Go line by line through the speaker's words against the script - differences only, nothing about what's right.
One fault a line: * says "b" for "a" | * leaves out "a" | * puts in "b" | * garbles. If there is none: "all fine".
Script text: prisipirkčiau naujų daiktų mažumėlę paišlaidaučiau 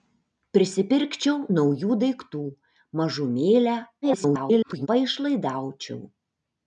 * garbles